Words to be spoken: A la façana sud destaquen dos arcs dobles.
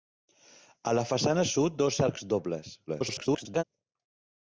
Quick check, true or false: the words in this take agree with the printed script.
false